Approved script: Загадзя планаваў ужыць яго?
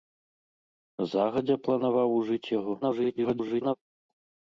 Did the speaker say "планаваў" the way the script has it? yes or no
yes